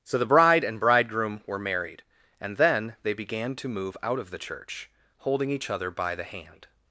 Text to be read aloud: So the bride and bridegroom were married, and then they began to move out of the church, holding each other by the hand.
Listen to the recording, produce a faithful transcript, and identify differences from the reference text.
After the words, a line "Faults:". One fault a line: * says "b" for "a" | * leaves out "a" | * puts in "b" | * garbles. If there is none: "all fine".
So the bride and bridegroom were married, and then they began to move out of the church, holding each other by the hand.
Faults:
all fine